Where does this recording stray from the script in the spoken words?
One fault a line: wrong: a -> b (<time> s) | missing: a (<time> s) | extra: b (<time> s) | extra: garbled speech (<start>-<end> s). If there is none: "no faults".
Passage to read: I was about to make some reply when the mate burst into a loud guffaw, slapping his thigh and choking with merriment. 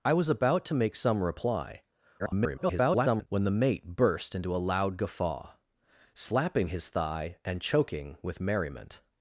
extra: garbled speech (2.2-3.3 s)